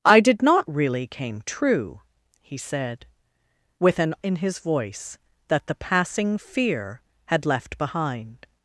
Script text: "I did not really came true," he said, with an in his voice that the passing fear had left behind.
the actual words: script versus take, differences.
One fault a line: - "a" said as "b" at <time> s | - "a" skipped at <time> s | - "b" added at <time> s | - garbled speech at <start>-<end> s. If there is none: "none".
none